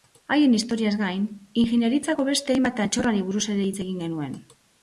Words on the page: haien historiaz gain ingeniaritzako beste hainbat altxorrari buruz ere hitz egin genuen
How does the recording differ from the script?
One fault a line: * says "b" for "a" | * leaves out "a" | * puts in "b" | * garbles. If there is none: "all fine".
all fine